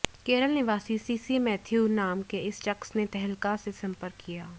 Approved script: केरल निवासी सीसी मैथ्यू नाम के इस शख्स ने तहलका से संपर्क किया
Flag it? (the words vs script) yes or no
no